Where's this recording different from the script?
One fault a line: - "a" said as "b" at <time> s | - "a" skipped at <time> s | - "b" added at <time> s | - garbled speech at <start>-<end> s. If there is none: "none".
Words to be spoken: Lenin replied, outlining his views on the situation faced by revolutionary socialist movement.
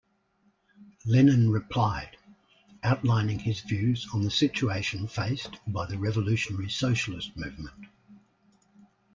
- "the" added at 5.8 s